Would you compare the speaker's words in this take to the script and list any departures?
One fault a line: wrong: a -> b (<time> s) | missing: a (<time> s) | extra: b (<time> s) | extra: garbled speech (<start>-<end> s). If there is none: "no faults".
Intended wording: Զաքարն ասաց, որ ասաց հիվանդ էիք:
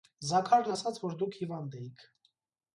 wrong: ասաց -> դուք (1.2 s)